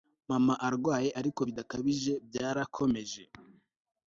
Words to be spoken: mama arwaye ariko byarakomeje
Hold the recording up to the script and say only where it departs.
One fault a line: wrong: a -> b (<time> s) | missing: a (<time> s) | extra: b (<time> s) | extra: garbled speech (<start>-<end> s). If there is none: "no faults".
extra: bidakabije (1.5 s)